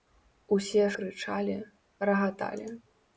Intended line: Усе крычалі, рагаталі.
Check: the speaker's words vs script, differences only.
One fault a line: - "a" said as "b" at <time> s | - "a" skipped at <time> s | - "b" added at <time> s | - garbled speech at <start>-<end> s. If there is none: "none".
none